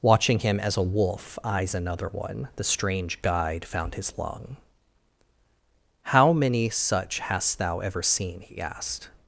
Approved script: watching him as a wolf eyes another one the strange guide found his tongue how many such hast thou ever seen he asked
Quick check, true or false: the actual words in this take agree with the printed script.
false